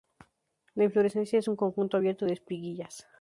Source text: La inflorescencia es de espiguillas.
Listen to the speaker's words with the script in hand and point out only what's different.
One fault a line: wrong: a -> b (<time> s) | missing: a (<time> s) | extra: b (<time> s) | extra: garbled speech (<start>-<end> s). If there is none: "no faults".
extra: un conjunto abierto (1.5 s)